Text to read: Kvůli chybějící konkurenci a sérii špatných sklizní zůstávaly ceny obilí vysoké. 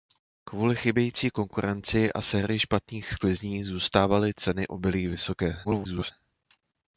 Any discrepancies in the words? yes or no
yes